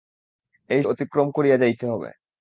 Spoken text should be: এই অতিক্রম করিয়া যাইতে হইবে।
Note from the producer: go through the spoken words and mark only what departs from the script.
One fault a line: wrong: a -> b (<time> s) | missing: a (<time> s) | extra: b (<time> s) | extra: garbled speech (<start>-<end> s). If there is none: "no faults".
no faults